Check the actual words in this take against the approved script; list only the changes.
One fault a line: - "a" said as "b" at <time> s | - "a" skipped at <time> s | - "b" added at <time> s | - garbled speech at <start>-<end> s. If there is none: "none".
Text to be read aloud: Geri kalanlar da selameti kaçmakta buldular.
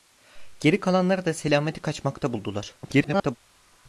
- garbled speech at 2.8-3.4 s